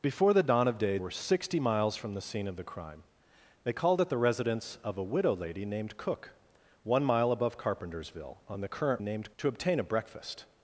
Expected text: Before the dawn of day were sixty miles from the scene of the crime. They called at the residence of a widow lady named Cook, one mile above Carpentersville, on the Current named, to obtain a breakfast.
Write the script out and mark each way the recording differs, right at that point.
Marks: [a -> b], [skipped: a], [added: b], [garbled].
Before the dawn of day were sixty miles from the scene of the crime. They called at the residence of a widow lady named Cook, one mile above Carpentersville, on the Current named, to obtain a breakfast.